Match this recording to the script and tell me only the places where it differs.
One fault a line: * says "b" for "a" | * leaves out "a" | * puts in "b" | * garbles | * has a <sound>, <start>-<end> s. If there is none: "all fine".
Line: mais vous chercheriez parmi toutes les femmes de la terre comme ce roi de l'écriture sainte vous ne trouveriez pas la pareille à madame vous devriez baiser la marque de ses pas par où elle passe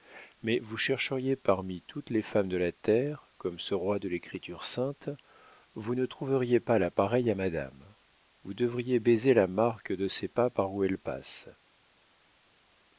all fine